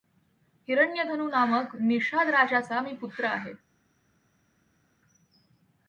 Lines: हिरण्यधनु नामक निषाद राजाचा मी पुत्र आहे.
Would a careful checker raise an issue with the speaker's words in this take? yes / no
no